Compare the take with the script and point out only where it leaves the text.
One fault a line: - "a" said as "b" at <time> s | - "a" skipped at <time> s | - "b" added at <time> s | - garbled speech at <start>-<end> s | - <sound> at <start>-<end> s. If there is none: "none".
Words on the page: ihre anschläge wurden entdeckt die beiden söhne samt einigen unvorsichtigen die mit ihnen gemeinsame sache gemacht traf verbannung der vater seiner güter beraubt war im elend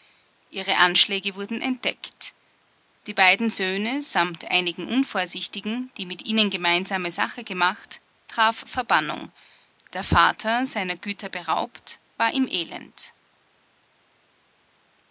none